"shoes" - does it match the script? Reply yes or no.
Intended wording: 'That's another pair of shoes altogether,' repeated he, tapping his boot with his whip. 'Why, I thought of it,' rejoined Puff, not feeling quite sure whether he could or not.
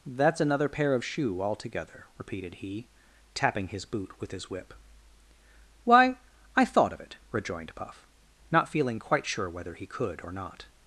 no